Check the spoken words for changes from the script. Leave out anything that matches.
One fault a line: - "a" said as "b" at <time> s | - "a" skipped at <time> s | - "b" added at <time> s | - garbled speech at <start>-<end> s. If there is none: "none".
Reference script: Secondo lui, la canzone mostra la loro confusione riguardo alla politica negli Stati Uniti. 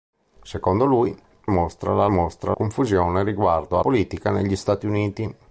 - "la canzone" skipped at 1.1 s
- "loro" said as "mostra" at 2.1 s
- "alla" skipped at 3.8 s